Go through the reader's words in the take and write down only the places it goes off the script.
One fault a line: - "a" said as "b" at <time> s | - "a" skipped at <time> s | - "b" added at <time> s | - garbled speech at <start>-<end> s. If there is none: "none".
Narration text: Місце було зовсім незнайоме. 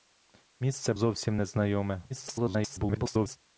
- "було" skipped at 0.9 s
- garbled speech at 2.1-3.4 s